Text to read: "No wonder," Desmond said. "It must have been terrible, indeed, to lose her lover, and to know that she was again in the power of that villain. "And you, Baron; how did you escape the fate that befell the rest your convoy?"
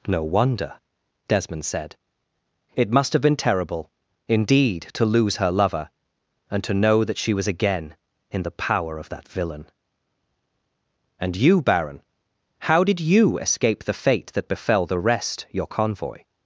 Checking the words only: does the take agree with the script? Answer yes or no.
yes